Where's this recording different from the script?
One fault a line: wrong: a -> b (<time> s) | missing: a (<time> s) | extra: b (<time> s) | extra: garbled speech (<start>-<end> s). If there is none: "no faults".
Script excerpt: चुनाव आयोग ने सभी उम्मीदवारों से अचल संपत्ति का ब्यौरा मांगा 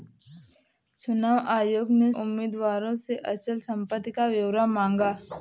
missing: सभी (2.1 s)